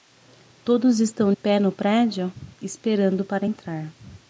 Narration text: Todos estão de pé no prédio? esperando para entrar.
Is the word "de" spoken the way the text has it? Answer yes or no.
no